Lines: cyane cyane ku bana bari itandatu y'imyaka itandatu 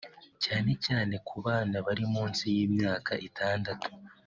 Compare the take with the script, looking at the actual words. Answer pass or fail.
fail